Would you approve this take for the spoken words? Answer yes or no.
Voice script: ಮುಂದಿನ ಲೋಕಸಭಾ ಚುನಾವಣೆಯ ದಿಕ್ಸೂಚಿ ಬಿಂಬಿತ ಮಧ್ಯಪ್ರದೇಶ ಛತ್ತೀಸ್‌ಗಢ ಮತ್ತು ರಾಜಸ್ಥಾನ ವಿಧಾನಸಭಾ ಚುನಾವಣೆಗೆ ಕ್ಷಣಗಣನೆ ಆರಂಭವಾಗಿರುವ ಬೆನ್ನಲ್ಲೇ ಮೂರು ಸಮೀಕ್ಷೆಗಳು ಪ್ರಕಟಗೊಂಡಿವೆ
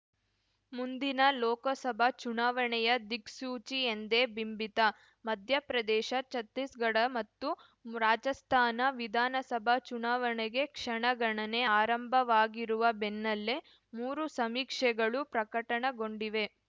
no